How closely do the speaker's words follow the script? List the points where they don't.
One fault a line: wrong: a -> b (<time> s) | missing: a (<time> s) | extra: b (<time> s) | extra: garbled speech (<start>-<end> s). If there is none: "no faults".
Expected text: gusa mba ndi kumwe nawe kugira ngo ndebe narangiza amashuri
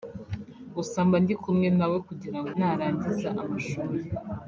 missing: ndebe (2.5 s)